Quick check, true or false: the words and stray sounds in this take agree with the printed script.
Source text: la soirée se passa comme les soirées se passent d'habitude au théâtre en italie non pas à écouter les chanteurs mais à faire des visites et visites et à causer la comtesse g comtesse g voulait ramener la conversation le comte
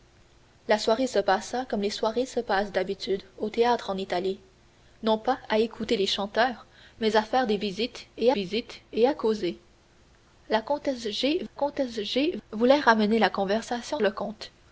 true